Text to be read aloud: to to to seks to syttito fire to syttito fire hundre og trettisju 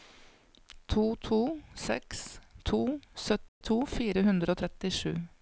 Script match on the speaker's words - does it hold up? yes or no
no